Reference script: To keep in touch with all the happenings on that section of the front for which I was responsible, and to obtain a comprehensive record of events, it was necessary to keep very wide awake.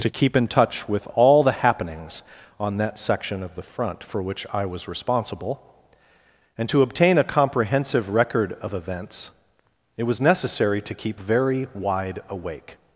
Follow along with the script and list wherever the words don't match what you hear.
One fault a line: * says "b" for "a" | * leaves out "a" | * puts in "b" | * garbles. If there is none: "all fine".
all fine